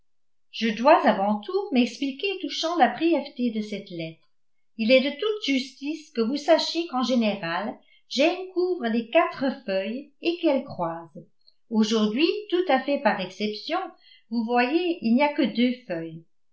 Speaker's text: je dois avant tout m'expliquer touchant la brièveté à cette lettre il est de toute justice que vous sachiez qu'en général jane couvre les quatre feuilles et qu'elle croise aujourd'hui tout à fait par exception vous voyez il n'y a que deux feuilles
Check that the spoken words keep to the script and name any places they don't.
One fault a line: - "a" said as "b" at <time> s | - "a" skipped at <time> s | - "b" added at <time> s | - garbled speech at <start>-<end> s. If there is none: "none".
- "à" said as "de" at 3.5 s